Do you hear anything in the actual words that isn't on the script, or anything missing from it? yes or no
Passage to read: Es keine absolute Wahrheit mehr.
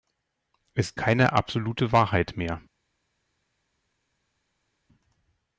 no